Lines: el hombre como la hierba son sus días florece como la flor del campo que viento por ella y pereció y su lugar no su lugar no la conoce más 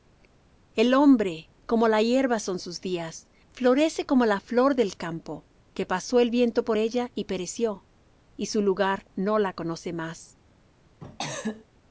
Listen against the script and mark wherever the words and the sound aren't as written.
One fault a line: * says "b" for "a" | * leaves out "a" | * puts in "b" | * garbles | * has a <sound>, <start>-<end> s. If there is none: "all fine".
* puts in "pasó el"
* leaves out "su lugar no"
* has a cough, 11.0-11.7 s